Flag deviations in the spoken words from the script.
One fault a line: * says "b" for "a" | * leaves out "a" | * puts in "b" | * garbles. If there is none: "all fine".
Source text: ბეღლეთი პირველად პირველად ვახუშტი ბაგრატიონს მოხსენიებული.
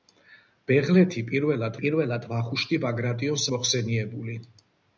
all fine